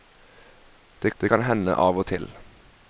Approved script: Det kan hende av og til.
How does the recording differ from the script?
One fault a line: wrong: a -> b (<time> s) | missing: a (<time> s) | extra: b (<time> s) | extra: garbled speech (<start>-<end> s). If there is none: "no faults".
extra: det (1.2 s)